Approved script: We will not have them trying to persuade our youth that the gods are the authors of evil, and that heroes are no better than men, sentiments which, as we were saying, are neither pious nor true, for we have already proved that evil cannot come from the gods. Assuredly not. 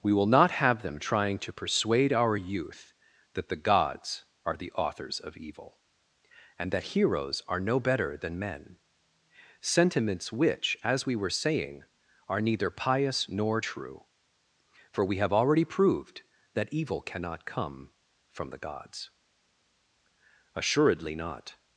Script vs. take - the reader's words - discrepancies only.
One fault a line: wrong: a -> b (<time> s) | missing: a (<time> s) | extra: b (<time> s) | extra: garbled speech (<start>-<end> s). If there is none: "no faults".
no faults